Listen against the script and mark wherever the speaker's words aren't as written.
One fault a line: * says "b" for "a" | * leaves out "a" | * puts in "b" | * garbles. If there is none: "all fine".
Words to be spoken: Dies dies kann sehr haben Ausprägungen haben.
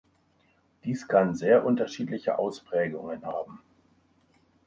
* leaves out "dies"
* says "unterschiedliche" for "haben"